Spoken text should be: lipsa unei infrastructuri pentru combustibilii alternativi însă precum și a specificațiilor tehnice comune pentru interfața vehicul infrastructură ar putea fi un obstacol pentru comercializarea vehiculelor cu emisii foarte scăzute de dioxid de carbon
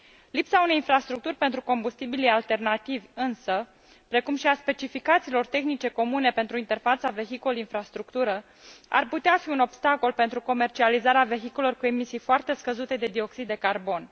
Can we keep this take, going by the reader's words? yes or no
yes